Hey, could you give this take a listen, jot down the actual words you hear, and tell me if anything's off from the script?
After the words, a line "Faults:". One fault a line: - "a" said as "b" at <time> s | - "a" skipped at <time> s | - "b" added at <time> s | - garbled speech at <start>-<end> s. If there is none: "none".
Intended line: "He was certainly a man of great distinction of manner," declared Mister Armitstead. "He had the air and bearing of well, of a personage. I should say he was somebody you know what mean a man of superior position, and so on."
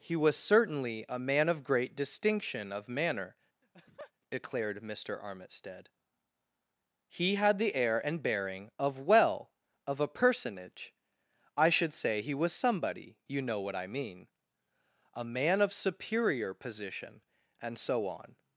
"He was certainly a man of great distinction of manner," declared Mister Armitstead. "He had the air and bearing of well, of a personage. I should say he was somebody you know what I mean a man of superior position, and so on."
Faults:
- "I" added at 13.7 s